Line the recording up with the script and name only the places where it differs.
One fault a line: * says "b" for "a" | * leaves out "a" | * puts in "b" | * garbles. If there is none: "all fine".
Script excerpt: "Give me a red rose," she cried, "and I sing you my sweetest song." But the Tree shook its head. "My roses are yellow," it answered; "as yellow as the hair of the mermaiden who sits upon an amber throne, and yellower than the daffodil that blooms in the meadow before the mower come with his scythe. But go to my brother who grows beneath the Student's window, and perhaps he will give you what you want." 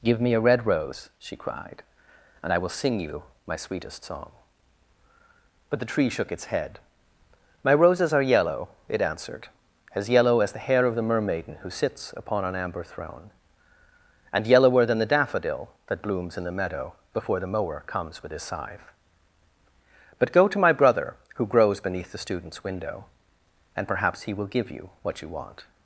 * puts in "will"
* says "comes" for "come"